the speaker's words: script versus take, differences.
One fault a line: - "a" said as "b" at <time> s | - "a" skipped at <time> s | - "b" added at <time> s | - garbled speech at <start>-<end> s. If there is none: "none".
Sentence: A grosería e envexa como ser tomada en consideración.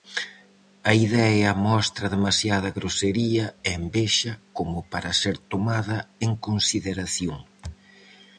- "idea mostra demasiada" added at 1.1 s
- "para" added at 4.9 s